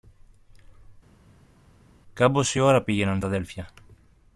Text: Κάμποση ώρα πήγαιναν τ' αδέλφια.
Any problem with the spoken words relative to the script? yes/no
no